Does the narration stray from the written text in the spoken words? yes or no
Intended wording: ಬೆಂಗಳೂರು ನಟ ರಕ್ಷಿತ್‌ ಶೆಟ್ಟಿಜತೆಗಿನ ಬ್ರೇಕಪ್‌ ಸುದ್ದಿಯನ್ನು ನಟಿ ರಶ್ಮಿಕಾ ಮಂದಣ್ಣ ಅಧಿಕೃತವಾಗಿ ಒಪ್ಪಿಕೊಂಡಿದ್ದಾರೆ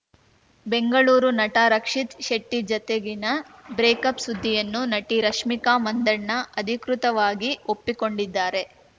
no